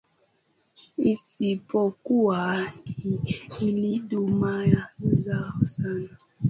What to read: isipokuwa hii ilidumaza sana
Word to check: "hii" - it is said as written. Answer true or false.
true